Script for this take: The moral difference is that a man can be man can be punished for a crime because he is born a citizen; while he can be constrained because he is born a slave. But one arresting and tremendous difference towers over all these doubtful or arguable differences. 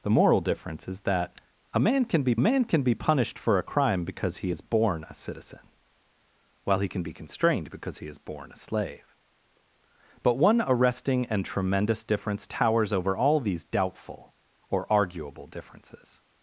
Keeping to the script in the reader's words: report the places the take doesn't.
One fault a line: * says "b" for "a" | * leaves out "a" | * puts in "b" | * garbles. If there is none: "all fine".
all fine